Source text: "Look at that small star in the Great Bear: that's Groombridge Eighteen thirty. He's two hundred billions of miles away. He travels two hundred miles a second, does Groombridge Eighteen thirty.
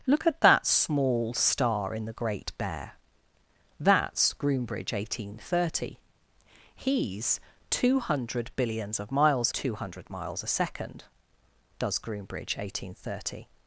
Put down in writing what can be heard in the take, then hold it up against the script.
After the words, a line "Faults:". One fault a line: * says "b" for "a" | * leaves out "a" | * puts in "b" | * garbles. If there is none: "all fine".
"Look at that small star in the Great Bear: that's Groombridge Eighteen thirty. He's two hundred billions of miles two hundred miles a second, does Groombridge Eighteen thirty.
Faults:
* leaves out "away He travels"